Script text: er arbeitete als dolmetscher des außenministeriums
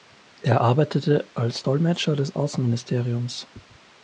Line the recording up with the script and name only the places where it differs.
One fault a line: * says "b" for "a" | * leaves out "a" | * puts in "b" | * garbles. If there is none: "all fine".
all fine